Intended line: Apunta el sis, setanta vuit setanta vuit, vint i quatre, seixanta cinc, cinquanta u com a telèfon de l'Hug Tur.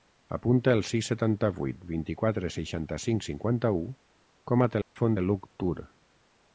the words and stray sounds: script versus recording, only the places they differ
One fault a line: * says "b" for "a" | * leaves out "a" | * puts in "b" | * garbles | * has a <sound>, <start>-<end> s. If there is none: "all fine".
* leaves out "setanta vuit"
* has a dropout, 4.8-5.0 s